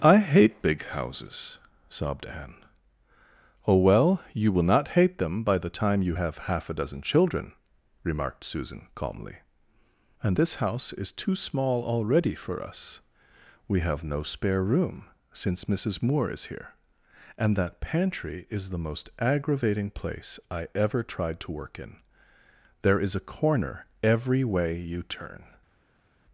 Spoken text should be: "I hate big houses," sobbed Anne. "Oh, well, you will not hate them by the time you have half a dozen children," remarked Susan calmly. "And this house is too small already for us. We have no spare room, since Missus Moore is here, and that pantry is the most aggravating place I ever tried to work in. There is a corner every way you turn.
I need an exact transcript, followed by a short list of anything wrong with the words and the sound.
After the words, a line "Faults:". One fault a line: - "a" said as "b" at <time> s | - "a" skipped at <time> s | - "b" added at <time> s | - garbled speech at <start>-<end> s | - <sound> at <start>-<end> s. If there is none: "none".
"I hate big houses," sobbed Anne. "Oh, well, you will not hate them by the time you have half a dozen children," remarked Susan calmly. "And this house is too small already for us. We have no spare room, since Missus Moore is here, and that pantry is the most aggravating place I ever tried to work in. There is a corner every way you turn.
Faults:
none